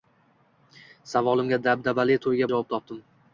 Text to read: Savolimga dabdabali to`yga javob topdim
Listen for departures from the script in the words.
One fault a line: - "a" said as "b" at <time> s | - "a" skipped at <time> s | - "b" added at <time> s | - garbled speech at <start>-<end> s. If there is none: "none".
none